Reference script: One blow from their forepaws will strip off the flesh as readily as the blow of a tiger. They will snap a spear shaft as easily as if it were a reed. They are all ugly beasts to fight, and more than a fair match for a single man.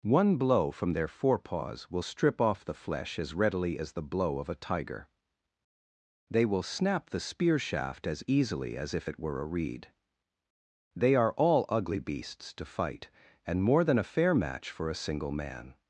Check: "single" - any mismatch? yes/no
no